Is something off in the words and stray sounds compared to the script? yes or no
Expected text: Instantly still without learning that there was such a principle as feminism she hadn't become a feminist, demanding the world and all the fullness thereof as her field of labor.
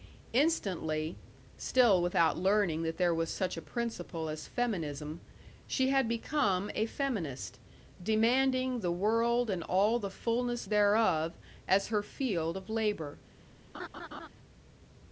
yes